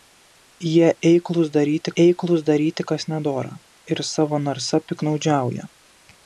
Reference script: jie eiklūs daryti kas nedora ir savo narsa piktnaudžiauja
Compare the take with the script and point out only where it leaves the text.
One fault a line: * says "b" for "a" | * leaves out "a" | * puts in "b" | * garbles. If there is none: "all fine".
* puts in "eiklūs daryti"